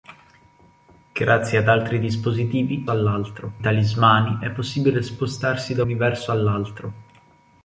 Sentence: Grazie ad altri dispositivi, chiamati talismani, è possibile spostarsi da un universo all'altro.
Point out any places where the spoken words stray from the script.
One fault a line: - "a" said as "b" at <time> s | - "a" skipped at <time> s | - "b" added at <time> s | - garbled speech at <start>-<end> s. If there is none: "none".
- "chiamati" said as "all'altro" at 2.9 s
- "un" skipped at 5.8 s